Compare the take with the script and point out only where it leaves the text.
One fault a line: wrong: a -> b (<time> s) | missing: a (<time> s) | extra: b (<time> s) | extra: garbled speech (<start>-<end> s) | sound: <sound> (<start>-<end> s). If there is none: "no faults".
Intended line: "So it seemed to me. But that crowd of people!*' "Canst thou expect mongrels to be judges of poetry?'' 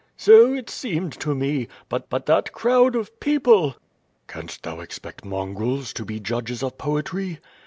extra: but (2.1 s)